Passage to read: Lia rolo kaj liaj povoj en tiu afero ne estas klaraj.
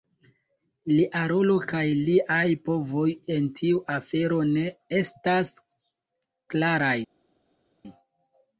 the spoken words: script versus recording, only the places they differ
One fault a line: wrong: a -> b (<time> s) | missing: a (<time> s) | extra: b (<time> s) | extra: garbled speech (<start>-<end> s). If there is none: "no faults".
no faults